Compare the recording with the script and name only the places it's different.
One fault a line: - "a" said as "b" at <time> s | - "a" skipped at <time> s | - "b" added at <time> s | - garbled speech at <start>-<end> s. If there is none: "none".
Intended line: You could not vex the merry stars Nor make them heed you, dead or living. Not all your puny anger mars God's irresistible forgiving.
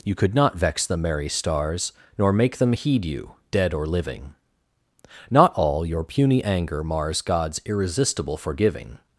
none